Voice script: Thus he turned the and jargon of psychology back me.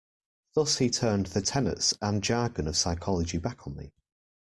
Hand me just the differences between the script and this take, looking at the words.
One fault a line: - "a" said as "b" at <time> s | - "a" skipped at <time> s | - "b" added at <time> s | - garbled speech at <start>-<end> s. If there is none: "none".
- "tenets" added at 1.4 s
- "on" added at 3.7 s